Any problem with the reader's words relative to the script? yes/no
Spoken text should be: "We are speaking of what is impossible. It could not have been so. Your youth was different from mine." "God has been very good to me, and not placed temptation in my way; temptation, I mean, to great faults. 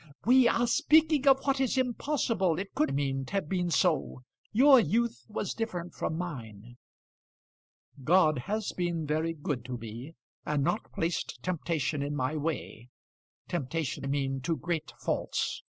yes